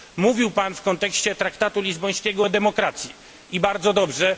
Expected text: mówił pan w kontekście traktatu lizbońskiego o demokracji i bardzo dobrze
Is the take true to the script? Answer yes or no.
yes